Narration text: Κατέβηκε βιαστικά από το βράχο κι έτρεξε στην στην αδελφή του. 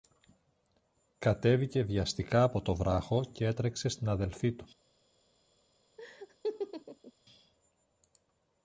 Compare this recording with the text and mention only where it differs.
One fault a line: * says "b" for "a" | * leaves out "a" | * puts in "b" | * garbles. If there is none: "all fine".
* leaves out "στην"